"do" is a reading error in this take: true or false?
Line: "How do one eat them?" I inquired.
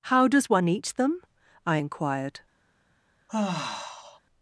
true